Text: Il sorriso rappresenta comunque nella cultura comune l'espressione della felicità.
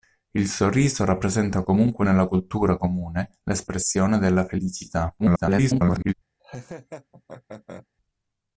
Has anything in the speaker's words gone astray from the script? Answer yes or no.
yes